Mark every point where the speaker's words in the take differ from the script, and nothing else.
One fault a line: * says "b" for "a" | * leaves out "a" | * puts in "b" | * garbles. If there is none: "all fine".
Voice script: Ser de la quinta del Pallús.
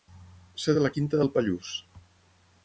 all fine